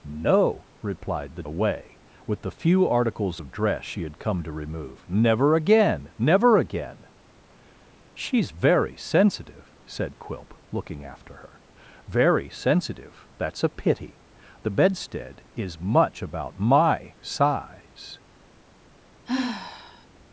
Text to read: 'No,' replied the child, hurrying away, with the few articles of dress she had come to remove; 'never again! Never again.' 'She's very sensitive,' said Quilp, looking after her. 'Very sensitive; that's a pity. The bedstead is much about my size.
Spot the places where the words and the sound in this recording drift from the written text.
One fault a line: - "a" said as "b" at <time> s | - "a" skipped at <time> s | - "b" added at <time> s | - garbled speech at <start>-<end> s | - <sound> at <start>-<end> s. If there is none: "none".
- "child hurrying" skipped at 1.4 s
- sigh at 19.2-20.1 s